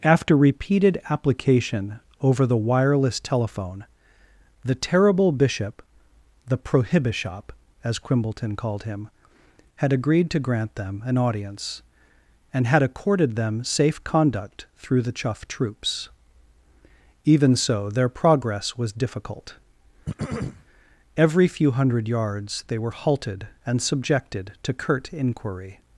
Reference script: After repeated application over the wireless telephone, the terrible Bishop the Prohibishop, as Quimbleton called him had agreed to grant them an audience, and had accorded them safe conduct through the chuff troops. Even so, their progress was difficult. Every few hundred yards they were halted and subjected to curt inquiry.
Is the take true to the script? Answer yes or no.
yes